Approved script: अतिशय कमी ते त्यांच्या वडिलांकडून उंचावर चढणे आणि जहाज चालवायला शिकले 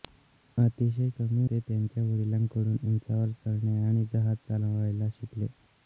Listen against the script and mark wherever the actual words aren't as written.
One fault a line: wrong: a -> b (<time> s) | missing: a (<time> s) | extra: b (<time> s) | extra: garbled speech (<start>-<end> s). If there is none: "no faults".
no faults